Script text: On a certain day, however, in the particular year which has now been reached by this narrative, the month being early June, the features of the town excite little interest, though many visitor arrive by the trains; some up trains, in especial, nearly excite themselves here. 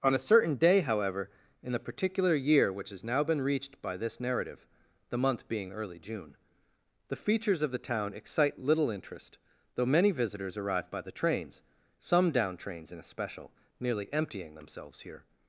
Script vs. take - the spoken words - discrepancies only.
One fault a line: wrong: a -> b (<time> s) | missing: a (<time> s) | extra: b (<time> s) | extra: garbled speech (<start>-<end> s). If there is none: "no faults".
wrong: visitor -> visitors (10.1 s)
wrong: up -> down (12.3 s)
wrong: excite -> emptying (14.1 s)